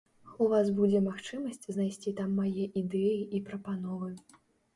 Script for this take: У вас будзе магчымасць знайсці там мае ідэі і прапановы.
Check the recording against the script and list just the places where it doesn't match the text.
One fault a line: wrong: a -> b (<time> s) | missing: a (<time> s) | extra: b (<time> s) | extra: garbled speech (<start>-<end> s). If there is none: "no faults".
no faults